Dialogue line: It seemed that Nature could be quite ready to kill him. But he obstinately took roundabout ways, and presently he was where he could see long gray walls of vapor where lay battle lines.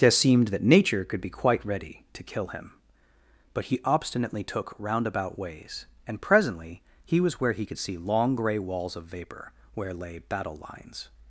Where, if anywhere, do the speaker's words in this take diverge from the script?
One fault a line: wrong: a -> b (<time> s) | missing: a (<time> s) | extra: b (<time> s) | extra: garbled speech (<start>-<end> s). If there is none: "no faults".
no faults